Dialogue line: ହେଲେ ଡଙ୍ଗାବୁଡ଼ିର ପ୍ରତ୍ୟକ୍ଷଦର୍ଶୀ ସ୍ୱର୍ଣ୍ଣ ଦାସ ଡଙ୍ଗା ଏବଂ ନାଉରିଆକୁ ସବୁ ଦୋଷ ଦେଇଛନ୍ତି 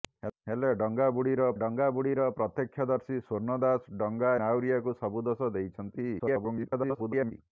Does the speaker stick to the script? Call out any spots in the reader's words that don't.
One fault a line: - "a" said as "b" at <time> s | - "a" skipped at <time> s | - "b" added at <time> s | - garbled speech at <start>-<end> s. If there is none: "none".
- "ଡଙ୍ଗାବୁଡ଼ିର" added at 1.6 s
- "ଏବଂ" skipped at 4.3 s
- garbled speech at 6.2-7.3 s